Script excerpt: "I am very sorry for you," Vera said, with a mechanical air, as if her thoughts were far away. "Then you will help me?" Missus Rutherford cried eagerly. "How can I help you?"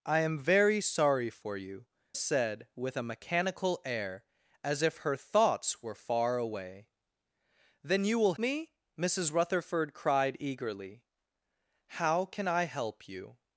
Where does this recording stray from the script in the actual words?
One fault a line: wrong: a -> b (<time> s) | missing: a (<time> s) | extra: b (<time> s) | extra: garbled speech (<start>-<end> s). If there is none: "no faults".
missing: Vera (1.9 s)
missing: help (8.3 s)